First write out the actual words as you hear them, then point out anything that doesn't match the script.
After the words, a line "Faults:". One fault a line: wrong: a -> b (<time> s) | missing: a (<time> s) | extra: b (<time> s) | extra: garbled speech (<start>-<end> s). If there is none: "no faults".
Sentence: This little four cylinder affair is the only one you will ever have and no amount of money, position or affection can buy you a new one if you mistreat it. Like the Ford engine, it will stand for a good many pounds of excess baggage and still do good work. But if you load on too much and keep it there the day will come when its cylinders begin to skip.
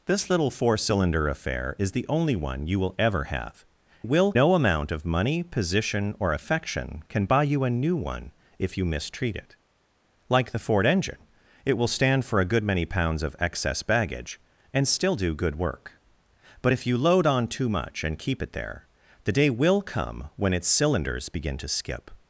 This little four cylinder affair is the only one you will ever have will no amount of money, position or affection can buy you a new one if you mistreat it. Like the Ford engine, it will stand for a good many pounds of excess baggage and still do good work. But if you load on too much and keep it there the day will come when its cylinders begin to skip.
Faults:
wrong: and -> will (4.0 s)